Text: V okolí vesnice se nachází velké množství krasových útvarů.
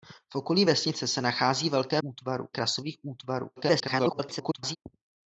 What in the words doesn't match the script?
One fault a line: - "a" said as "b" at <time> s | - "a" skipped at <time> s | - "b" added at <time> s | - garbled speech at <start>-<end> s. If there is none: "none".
- "množství" said as "útvarů" at 2.0 s
- garbled speech at 3.6-4.8 s